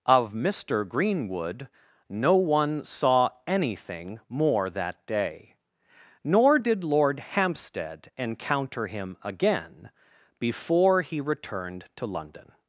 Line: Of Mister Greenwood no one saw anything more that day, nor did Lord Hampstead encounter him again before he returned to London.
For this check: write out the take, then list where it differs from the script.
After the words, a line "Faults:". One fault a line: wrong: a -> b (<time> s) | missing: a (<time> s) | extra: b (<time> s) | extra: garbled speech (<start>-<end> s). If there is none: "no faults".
Of Mister Greenwood no one saw anything more that day, nor did Lord Hampstead encounter him again before he returned to London.
Faults:
no faults